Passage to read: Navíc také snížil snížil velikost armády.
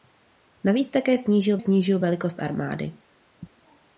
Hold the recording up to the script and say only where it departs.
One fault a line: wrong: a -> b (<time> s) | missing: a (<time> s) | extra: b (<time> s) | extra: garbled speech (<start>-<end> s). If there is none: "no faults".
no faults